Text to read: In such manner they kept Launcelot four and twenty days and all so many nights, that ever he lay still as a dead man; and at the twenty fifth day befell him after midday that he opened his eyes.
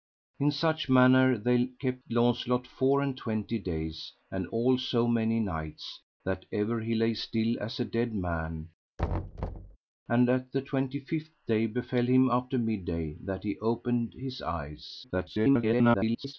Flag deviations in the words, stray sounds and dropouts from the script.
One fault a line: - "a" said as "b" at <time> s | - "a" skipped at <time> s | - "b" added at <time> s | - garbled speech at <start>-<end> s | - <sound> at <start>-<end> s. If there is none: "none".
- thud at 9.0-9.8 s
- garbled speech at 15.0-16.3 s